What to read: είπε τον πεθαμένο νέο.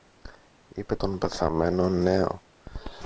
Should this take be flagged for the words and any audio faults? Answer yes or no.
no